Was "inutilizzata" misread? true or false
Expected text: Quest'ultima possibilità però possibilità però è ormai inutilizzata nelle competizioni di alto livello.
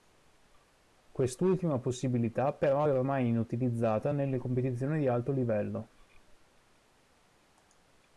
false